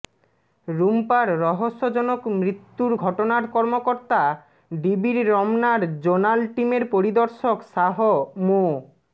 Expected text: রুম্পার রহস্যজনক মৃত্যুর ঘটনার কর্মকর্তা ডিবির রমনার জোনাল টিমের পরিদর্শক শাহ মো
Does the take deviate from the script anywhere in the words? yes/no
no